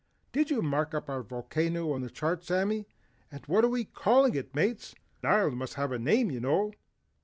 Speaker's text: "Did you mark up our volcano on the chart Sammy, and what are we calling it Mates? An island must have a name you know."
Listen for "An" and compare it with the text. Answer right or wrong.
wrong